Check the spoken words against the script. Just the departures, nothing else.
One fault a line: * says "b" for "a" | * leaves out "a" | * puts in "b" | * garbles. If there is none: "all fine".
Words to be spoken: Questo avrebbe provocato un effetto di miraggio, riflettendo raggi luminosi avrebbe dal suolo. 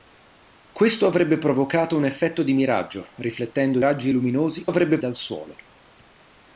all fine